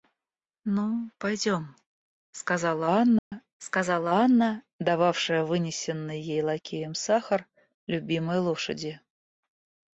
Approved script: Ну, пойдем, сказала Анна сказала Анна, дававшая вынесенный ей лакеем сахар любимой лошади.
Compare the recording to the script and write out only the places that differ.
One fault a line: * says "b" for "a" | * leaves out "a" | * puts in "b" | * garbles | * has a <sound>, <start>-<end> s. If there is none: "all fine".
* has a dropout, 3.2-3.3 s